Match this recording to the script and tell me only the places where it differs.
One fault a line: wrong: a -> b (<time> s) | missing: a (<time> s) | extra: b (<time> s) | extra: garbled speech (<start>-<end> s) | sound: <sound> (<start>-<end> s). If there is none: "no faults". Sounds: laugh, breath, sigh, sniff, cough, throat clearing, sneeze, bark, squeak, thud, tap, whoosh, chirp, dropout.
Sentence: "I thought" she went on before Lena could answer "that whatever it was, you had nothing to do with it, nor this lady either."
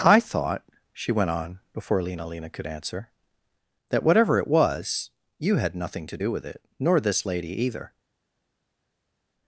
extra: Lena (2.2 s)